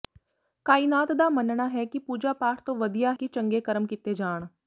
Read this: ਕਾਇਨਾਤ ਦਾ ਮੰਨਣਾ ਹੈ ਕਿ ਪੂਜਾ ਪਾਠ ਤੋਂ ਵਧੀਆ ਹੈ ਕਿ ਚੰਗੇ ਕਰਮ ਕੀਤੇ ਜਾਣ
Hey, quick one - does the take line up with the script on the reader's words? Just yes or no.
no